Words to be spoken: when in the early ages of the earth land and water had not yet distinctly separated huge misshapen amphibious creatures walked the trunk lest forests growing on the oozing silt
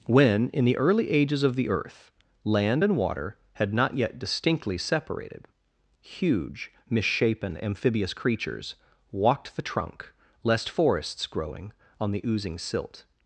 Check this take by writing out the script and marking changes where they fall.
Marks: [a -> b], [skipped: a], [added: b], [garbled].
when in the early ages of the earth land and water had not yet distinctly separated huge misshapen amphibious creatures walked the trunk lest forests growing on the oozing silt